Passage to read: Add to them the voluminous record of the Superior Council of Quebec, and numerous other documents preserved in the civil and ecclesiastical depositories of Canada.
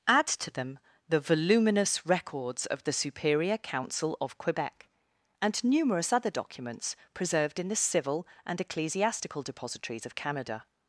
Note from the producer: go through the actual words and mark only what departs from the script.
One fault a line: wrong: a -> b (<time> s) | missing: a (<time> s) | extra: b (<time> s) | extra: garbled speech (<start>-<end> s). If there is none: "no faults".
wrong: record -> records (2.1 s)